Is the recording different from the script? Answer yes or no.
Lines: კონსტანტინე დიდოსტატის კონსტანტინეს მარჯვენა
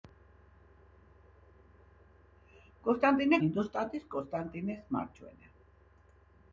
no